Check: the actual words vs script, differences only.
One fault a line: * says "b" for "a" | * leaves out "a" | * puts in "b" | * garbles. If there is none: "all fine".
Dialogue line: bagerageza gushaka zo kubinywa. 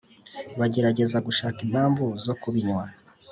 * puts in "impamvu"